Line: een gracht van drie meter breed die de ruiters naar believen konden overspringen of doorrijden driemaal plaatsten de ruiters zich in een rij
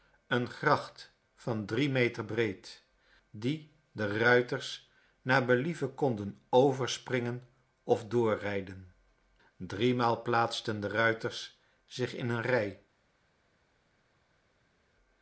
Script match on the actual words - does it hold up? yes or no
yes